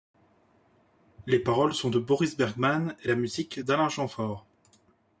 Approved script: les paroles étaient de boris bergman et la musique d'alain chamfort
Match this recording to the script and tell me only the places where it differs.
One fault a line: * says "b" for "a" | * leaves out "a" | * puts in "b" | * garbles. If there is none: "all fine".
* says "sont" for "étaient"